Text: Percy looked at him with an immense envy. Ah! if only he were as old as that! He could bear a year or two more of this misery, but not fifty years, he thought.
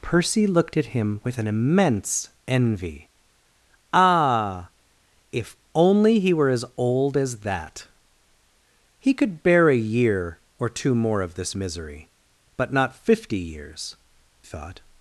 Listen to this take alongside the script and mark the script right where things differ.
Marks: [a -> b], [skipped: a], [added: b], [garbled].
Percy looked at him with an immense envy. Ah! if only he were as old as that! He could bear a year or two more of this misery, but not fifty years, [skipped: he] thought.